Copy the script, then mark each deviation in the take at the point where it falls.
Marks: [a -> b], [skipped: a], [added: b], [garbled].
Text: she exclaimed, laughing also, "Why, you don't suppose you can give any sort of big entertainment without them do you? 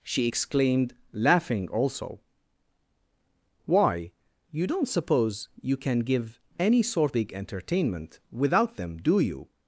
she exclaimed, laughing also, "Why, you don't suppose you can give any sort [skipped: of] big entertainment without them do you?